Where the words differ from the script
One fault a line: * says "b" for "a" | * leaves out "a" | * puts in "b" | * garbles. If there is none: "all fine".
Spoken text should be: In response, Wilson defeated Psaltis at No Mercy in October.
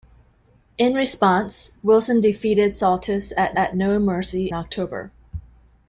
* puts in "at"
* leaves out "in"